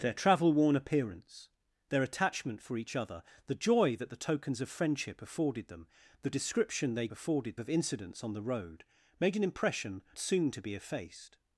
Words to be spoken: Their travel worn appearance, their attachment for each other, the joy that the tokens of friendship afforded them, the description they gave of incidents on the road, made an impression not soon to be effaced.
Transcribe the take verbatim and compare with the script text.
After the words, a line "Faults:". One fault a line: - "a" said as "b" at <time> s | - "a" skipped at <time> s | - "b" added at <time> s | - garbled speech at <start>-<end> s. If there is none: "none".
Their travel worn appearance, their attachment for each other, the joy that the tokens of friendship afforded them, the description they afforded of incidents on the road, made an impression soon to be effaced.
Faults:
- "gave" said as "afforded" at 7.1 s
- "not" skipped at 10.0 s